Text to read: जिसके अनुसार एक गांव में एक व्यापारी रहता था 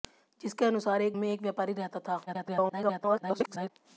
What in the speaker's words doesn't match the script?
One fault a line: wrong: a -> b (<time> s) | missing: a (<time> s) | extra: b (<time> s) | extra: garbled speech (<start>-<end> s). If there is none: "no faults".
missing: गांव (1.1 s)
extra: garbled speech (2.3-3.7 s)